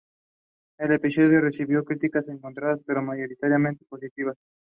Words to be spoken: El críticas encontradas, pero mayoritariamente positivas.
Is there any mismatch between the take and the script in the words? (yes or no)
yes